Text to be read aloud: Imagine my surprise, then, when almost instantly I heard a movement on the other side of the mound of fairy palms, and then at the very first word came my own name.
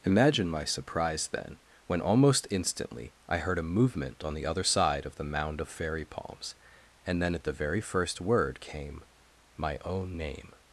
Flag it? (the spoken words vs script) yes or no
no